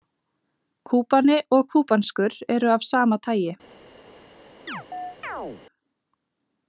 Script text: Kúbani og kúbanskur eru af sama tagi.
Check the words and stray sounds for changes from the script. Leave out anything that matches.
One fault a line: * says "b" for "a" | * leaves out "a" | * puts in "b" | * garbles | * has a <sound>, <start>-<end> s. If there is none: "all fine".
* has a chirp, 4.7-5.6 s